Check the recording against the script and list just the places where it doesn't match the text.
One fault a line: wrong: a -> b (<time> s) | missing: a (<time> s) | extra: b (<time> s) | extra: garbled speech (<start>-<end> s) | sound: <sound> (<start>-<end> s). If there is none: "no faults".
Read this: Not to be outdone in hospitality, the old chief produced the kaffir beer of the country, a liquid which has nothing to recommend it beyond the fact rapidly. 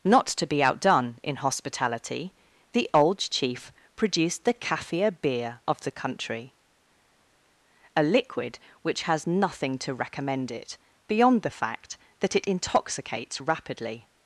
extra: that it intoxicates (12.2 s)